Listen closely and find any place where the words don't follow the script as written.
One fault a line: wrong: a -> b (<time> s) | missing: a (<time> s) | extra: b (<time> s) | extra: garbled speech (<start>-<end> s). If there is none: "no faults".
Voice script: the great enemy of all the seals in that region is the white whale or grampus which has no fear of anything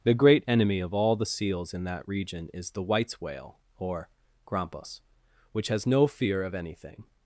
wrong: white -> whites (2.8 s)